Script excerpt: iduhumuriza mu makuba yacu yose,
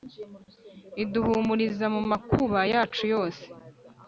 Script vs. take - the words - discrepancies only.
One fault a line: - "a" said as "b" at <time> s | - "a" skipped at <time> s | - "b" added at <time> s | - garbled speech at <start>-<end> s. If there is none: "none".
none